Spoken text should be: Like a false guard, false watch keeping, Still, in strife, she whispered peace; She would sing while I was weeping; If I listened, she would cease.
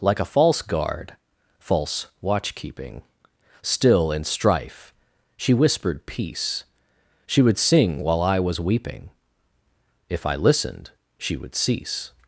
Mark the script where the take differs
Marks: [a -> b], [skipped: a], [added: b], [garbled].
Like a false guard, false watch keeping, Still, in strife, she whispered peace; She would sing while I was weeping; If I listened, she would cease.